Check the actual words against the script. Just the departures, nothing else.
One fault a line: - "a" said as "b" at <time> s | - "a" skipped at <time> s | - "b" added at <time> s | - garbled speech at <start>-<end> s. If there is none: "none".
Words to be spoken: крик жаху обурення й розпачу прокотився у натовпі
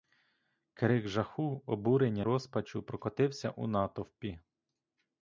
- "й" skipped at 2.2 s